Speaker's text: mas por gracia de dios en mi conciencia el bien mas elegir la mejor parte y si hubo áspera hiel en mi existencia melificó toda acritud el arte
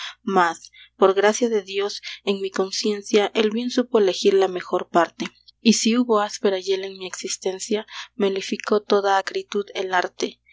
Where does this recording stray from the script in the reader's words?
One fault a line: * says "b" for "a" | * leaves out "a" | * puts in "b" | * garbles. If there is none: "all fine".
* says "supo" for "mas"